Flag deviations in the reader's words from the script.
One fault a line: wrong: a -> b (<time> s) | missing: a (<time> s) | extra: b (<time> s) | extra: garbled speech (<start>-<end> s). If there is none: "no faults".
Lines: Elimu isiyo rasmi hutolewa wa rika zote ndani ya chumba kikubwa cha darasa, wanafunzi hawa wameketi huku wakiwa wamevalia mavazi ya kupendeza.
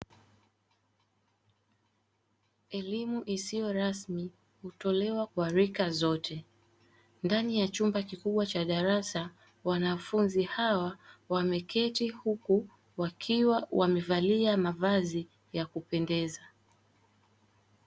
no faults